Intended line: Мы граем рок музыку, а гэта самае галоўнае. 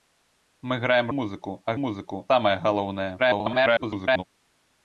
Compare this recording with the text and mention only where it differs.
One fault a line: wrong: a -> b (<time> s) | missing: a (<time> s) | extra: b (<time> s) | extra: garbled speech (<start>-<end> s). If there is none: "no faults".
missing: рок (1.1 s)
wrong: гэта -> музыку (1.8 s)
extra: garbled speech (3.2-4.2 s)